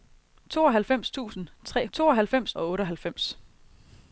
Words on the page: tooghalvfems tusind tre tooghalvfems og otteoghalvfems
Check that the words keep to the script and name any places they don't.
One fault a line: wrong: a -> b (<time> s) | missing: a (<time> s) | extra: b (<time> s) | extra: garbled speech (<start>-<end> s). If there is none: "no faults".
no faults